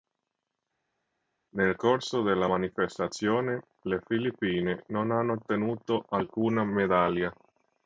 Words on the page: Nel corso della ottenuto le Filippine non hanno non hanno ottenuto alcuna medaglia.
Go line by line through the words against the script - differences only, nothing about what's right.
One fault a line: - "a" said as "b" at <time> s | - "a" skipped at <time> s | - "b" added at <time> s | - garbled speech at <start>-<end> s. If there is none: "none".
- "ottenuto" said as "manifestazione" at 2.4 s
- "non hanno" skipped at 5.3 s